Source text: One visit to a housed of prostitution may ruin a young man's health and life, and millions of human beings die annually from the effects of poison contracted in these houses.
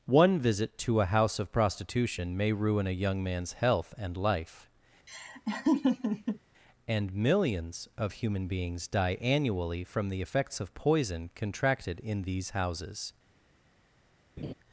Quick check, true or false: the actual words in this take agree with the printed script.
false